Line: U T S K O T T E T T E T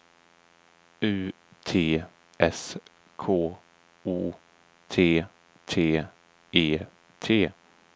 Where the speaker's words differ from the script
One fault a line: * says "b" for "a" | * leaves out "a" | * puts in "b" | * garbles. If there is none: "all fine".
* leaves out "T E T"